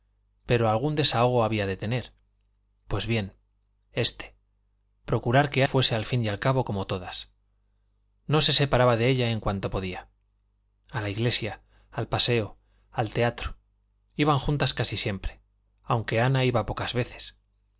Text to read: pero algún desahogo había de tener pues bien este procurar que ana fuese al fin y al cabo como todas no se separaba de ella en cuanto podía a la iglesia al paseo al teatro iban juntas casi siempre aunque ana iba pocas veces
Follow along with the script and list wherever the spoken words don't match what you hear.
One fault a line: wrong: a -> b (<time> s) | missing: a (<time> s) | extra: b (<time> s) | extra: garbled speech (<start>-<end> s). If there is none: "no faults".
missing: ana (5.6 s)